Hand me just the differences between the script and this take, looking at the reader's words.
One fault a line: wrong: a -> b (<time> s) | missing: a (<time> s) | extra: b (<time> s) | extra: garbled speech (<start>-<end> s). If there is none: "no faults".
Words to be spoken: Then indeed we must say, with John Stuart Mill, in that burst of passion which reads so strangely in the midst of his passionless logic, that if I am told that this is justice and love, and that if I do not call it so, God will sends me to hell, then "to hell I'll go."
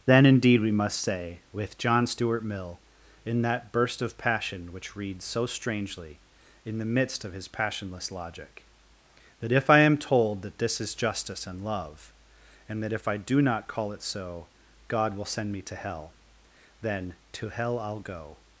wrong: sends -> send (15.2 s)